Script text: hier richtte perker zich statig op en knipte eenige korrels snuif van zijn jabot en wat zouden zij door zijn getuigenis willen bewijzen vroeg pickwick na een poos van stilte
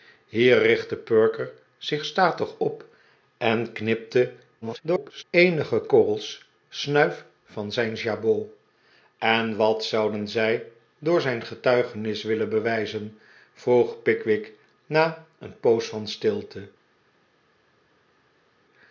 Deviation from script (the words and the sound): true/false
true